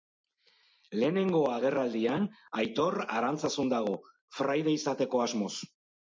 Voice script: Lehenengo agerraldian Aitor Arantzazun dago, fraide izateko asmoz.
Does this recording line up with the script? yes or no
yes